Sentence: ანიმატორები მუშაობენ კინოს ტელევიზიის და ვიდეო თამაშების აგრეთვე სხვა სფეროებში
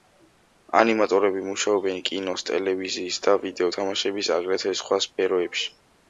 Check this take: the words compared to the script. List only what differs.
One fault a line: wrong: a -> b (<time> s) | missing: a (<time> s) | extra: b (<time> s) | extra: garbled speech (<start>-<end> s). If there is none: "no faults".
no faults